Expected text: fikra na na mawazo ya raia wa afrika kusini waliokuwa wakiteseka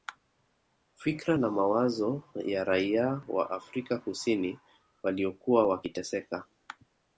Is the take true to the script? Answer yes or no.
no